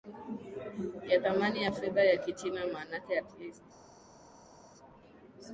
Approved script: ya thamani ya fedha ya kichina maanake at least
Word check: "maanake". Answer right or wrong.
right